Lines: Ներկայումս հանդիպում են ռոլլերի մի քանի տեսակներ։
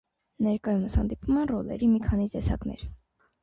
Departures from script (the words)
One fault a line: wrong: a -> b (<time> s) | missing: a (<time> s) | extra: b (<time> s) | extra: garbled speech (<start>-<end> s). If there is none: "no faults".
no faults